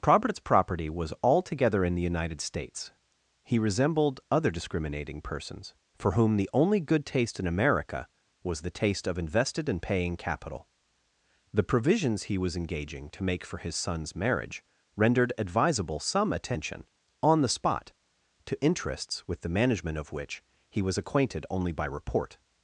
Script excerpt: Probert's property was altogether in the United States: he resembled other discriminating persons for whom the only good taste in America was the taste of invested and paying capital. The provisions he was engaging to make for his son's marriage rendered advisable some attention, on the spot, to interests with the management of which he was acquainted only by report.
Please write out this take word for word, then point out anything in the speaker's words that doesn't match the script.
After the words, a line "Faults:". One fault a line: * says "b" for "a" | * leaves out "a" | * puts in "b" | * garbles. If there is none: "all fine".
Probert's property was altogether in the United States: he resembled other discriminating persons for whom the only good taste in America was the taste of invested and paying capital. The provisions he was engaging to make for his son's marriage rendered advisable some attention, on the spot, to interests with the management of which he was acquainted only by report.
Faults:
all fine